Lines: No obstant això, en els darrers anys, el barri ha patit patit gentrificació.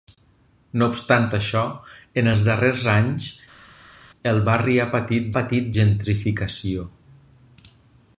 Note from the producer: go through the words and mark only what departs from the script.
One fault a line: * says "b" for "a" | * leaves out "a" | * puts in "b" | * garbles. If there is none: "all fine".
all fine